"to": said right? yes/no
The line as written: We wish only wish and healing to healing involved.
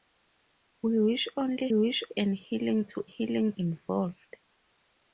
yes